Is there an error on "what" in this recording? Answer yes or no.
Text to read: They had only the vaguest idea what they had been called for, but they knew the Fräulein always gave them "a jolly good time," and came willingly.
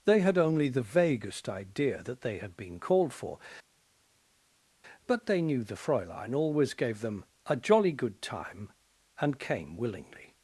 yes